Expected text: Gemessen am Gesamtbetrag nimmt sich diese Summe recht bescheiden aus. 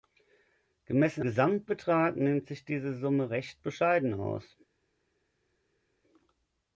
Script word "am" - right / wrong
wrong